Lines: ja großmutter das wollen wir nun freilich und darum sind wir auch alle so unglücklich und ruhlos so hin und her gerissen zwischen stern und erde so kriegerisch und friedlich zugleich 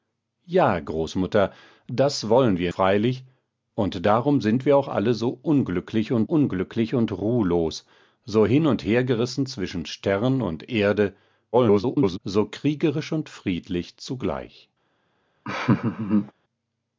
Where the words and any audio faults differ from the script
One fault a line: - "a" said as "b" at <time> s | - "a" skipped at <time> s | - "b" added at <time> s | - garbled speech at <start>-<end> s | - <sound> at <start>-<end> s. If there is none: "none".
- "nun" skipped at 2.7 s
- "unglücklich und" added at 6.3 s
- garbled speech at 11.5-12.2 s
- laugh at 15.4-16.3 s